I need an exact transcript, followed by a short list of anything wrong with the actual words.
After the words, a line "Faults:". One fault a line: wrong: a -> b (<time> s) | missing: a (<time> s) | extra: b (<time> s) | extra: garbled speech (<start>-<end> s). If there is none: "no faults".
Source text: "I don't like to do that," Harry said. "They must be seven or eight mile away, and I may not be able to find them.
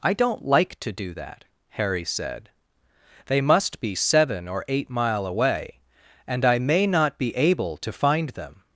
"I don't like to do that," Harry said. "They must be seven or eight mile away, and I may not be able to find them.
Faults:
no faults